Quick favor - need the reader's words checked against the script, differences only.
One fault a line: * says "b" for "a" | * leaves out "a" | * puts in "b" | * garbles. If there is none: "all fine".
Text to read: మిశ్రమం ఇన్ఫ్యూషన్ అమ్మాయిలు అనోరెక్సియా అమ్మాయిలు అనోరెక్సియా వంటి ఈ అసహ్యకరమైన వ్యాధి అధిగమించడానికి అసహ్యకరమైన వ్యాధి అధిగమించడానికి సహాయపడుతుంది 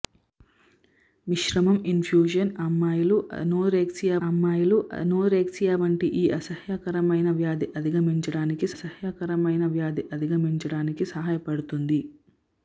all fine